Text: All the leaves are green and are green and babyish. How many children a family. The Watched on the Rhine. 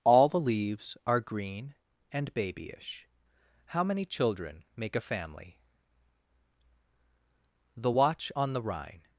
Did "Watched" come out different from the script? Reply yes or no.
yes